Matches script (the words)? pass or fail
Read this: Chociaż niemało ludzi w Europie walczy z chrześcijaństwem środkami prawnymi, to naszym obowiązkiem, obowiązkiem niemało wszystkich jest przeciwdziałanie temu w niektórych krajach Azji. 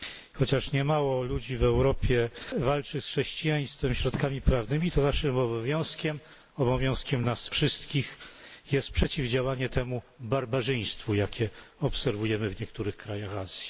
fail